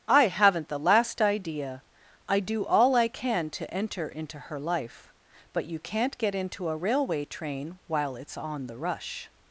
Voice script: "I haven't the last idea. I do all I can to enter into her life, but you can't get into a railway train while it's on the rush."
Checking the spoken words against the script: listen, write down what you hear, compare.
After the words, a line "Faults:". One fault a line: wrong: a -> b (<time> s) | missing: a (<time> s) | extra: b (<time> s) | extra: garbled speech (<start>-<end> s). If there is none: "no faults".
"I haven't the last idea. I do all I can to enter into her life, but you can't get into a railway train while it's on the rush."
Faults:
no faults